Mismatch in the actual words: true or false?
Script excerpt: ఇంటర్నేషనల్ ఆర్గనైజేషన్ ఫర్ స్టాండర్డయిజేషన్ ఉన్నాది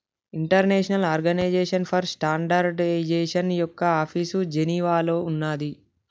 true